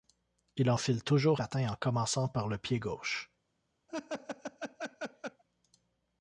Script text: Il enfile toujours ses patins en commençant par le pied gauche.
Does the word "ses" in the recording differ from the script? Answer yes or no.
yes